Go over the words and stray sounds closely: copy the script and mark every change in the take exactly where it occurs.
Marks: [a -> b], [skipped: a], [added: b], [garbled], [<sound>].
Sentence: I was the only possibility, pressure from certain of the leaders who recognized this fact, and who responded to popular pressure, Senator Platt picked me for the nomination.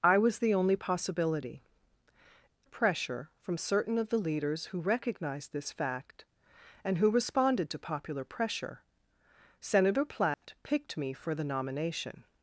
I was the only possibility, pressure from certain of the leaders who recognized this fact, and who responded to popular pressure, Senator Platt [dropout] picked me for the nomination.